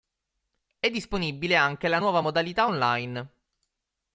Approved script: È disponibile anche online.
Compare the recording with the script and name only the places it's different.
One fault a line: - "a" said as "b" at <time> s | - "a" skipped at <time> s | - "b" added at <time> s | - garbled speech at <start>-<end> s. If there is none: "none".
- "la nuova modalità" added at 1.9 s